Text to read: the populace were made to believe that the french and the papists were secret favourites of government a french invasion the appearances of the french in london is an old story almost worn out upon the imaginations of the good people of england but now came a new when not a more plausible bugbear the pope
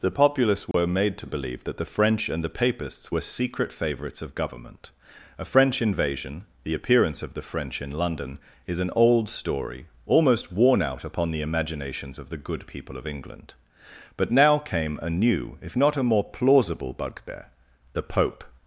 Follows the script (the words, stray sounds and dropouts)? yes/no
no